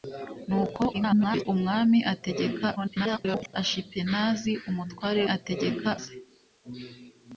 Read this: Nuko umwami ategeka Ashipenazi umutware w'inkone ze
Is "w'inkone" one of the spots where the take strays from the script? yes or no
yes